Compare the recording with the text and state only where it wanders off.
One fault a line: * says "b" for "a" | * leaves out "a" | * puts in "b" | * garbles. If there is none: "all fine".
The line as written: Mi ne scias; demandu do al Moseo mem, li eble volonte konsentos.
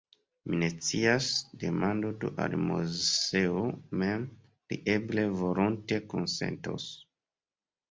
all fine